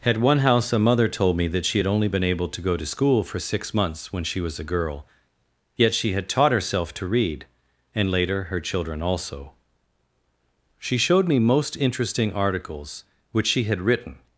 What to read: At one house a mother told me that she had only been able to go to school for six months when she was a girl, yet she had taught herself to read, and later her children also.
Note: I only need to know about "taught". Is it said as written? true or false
true